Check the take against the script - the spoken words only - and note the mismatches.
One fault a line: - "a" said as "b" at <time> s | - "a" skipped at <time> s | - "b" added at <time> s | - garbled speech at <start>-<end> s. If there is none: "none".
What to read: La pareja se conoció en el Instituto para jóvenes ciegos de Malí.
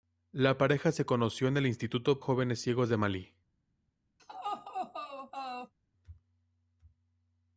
- "para" skipped at 2.2 s